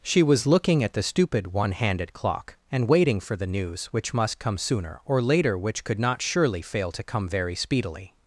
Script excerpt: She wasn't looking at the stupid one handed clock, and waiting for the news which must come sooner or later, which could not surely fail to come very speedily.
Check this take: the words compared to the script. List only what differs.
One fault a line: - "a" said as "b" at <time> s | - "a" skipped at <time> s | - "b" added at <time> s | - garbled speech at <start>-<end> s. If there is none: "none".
- "wasn't" said as "was" at 0.2 s